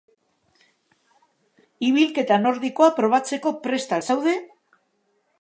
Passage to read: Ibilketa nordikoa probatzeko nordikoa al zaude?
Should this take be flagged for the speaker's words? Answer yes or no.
yes